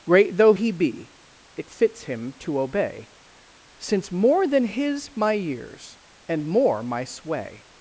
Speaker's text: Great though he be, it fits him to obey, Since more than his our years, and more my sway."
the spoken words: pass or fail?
fail